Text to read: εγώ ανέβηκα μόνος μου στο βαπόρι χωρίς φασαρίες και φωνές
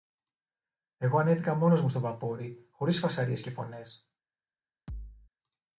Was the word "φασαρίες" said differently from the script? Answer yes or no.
no